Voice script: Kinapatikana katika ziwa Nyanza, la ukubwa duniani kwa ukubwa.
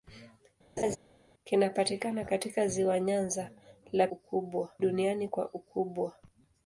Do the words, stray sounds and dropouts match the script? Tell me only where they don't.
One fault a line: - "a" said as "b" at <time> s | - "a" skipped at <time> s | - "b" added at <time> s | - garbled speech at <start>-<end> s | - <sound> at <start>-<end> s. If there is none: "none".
- laugh at 0.8-1.0 s